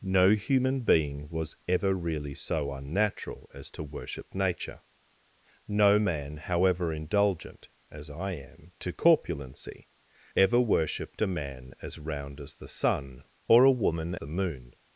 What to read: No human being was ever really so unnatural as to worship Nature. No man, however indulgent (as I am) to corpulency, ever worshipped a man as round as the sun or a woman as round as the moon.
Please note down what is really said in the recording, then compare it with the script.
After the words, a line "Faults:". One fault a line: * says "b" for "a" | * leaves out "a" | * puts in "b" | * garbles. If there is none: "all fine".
No human being was ever really so unnatural as to worship Nature. No man, however indulgent (as I am) to corpulency, ever worshipped a man as round as the sun or a woman the moon.
Faults:
* leaves out "as round as"